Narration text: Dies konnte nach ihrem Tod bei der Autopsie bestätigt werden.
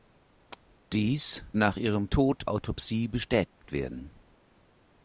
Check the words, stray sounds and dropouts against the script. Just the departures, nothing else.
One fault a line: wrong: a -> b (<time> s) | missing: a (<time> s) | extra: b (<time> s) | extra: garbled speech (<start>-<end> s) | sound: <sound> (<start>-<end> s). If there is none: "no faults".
missing: konnte (1.4 s)
missing: bei der (2.5 s)
sound: dropout (3.5-3.6 s)